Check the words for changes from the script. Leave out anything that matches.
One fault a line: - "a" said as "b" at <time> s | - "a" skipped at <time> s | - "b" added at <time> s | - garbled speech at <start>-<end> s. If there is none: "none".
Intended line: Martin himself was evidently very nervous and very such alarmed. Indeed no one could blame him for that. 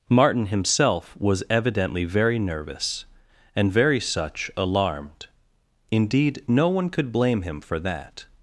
none